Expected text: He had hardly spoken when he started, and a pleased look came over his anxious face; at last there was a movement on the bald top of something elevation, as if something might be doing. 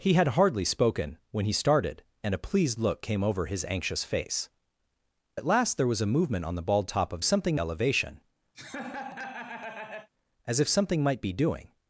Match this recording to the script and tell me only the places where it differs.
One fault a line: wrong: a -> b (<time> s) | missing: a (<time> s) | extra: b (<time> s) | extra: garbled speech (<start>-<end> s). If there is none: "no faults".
no faults